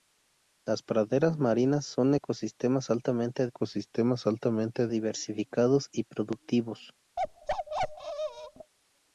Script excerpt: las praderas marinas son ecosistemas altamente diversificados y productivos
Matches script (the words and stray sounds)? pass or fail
fail